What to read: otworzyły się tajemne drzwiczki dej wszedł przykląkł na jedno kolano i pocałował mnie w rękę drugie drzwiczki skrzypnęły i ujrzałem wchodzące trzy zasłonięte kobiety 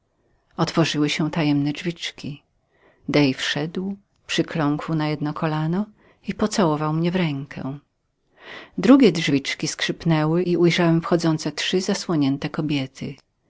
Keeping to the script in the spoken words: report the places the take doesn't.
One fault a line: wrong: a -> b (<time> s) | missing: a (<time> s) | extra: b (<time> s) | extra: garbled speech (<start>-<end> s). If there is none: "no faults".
no faults